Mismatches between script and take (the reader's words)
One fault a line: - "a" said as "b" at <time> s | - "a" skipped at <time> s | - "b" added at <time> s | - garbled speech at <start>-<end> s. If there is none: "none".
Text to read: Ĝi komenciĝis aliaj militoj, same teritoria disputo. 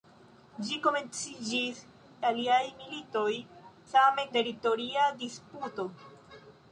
none